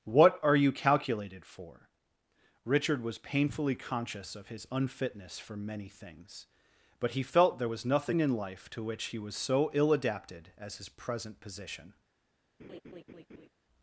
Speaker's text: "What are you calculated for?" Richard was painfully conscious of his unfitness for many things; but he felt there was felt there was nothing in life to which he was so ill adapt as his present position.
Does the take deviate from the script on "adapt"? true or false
true